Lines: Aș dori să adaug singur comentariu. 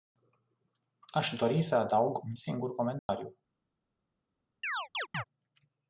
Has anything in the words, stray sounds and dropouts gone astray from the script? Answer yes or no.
yes